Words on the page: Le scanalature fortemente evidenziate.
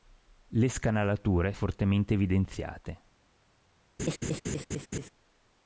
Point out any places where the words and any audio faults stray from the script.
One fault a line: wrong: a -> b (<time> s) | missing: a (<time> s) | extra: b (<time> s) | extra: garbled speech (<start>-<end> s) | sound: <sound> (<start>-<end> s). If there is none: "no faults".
sound: laugh (4.0-5.1 s)